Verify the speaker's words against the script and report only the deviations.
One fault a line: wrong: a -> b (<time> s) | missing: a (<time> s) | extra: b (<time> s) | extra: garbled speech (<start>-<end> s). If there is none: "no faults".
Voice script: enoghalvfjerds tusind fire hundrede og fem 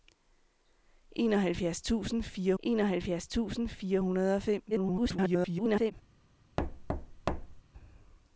extra: enoghalvfjerds tusind fire (2.6 s)
extra: garbled speech (4.7-5.9 s)